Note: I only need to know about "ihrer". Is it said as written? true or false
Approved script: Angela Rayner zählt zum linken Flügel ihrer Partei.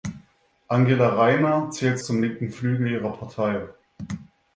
true